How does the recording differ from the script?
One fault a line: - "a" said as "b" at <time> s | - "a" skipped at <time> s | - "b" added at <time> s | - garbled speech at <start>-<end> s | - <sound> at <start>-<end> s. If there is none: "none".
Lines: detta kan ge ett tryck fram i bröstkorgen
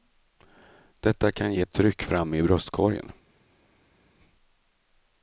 none